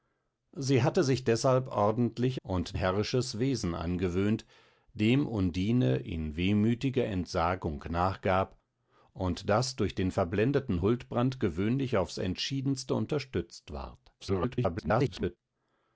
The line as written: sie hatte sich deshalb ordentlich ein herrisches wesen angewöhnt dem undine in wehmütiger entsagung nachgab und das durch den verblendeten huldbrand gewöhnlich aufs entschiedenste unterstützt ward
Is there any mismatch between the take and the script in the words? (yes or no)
yes